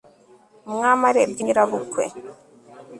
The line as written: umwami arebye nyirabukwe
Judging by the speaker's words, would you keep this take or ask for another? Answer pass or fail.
pass